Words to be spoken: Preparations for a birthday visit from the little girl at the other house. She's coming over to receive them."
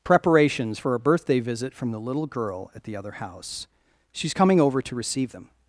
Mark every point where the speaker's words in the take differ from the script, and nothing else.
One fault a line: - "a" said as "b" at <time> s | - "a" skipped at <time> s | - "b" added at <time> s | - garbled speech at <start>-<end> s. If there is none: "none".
none